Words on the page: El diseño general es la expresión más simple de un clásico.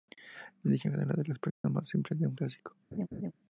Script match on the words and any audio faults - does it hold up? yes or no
no